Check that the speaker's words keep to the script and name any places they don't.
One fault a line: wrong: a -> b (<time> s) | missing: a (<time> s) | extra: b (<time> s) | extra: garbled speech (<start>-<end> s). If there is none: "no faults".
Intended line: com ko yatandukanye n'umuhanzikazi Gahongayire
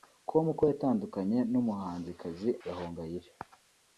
no faults